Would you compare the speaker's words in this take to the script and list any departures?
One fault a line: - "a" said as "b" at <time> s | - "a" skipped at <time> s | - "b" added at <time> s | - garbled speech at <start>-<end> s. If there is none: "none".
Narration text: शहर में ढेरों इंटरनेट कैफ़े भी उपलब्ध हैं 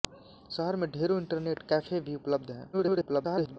- garbled speech at 2.7-3.6 s